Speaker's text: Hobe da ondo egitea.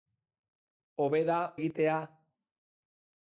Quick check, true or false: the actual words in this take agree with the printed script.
false